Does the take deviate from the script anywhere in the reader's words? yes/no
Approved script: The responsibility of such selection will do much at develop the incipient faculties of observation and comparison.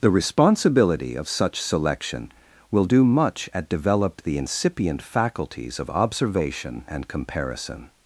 no